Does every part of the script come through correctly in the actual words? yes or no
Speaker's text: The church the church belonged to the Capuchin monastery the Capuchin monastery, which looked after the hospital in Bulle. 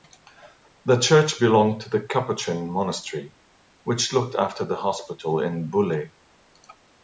no